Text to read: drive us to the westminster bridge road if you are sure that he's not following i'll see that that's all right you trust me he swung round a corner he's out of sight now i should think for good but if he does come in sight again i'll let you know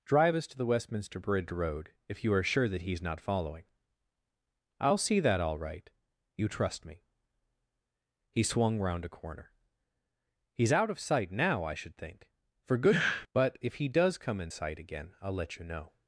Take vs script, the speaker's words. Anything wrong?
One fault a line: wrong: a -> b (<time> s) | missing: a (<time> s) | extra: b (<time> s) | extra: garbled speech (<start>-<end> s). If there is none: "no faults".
missing: that's (5.4 s)